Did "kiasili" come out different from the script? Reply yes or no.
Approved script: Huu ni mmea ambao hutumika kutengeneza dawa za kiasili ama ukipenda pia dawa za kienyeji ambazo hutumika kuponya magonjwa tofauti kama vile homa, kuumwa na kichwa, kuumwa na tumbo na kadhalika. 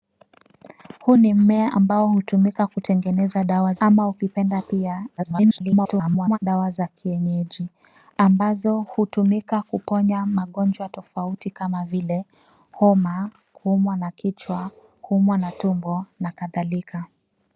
yes